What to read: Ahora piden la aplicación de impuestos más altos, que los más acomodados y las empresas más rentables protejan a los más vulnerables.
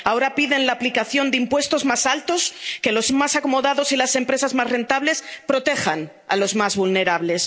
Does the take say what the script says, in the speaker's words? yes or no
yes